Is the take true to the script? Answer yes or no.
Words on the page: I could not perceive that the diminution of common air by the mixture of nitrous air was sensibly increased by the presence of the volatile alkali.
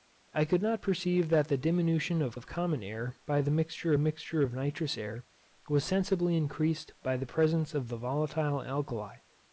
no